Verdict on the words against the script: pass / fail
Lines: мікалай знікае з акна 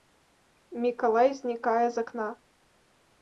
pass